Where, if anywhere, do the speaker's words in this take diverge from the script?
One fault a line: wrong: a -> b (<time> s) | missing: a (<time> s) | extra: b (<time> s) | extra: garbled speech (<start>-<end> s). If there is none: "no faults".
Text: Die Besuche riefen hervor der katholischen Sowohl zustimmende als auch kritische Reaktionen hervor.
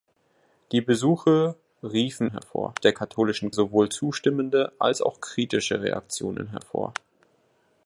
no faults